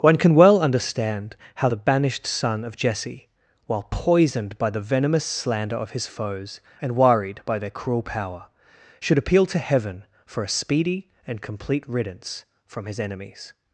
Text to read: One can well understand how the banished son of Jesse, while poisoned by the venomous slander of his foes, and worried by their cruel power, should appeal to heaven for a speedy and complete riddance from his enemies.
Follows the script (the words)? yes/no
yes